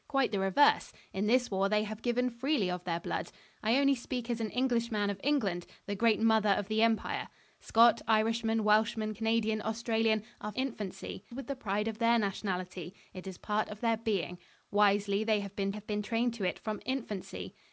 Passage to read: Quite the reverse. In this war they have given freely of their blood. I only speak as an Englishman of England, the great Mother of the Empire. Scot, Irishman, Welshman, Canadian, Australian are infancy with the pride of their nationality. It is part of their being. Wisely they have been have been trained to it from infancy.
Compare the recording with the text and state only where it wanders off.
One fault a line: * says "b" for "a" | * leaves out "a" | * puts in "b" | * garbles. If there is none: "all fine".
all fine